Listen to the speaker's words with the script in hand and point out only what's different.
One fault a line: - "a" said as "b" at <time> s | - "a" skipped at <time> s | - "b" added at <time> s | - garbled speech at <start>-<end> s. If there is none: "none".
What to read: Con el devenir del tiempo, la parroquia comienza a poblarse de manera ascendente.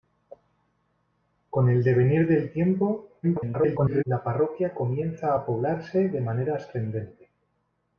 - garbled speech at 3.2-4.0 s